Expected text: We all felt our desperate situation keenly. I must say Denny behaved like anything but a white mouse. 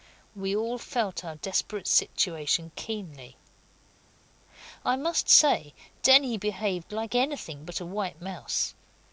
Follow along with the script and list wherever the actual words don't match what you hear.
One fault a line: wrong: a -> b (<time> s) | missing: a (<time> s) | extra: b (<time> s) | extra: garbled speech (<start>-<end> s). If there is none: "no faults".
no faults